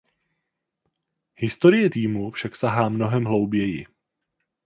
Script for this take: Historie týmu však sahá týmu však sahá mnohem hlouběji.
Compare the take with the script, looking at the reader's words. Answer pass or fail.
fail